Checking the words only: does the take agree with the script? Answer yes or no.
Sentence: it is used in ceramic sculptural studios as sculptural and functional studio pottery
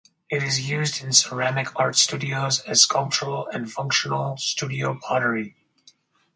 no